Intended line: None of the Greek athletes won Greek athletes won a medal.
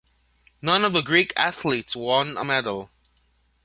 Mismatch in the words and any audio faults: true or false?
true